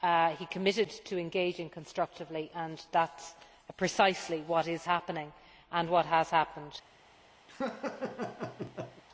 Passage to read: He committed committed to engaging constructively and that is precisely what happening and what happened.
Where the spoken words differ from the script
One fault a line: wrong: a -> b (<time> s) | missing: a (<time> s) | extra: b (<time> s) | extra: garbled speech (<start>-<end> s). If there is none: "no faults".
missing: committed (0.9 s)
extra: is (4.7 s)
extra: has (6.1 s)